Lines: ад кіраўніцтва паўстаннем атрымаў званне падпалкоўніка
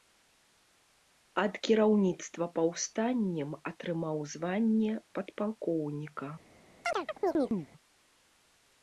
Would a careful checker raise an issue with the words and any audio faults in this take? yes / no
yes